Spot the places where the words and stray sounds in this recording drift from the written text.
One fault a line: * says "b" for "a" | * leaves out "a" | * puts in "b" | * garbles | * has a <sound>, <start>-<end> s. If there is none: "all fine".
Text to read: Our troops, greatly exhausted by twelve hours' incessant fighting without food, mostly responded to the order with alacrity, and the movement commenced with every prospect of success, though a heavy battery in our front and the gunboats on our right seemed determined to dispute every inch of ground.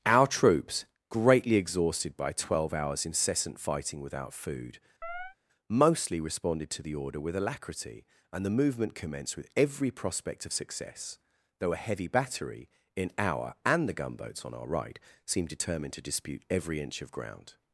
* has a chirp, 5.0-5.4 s
* leaves out "front"